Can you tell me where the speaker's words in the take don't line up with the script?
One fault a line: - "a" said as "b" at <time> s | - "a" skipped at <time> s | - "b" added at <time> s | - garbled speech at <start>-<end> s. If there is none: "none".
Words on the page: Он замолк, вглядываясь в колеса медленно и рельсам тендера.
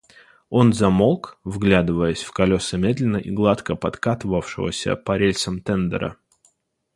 - "гладко подкатывавшегося по" added at 3.3 s